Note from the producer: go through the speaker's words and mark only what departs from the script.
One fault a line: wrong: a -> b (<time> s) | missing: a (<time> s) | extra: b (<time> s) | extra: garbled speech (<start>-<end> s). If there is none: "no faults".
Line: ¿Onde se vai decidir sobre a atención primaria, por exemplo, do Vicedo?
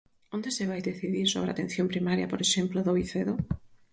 no faults